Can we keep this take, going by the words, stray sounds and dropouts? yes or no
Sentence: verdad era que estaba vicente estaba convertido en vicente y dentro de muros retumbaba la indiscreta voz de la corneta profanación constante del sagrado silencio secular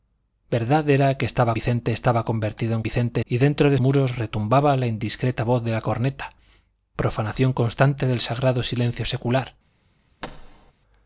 no